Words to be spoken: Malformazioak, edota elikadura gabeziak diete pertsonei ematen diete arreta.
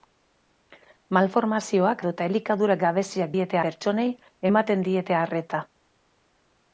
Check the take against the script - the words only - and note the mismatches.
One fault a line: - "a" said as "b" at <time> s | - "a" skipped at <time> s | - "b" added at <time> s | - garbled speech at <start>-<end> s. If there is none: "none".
none